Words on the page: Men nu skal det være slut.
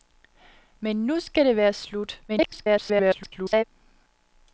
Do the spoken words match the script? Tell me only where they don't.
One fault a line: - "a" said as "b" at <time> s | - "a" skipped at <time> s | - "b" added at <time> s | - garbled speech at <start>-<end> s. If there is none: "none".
- garbled speech at 2.3-3.6 s